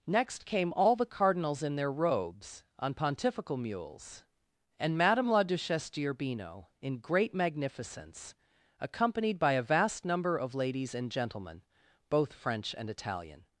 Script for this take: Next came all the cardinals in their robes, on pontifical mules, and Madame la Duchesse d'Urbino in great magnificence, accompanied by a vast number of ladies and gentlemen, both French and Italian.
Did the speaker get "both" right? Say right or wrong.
right